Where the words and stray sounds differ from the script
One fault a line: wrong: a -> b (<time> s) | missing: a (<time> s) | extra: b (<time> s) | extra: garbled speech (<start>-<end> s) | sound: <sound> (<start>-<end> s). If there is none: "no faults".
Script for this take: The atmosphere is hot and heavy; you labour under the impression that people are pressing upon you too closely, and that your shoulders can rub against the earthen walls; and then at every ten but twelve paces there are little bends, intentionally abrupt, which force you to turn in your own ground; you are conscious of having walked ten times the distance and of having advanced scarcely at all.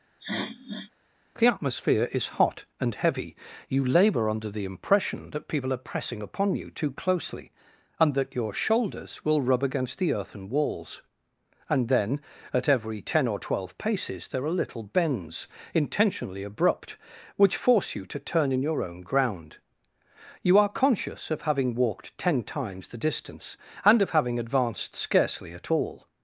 sound: sniff (0.2-0.9 s)
wrong: can -> will (9.2 s)
wrong: but -> or (13.3 s)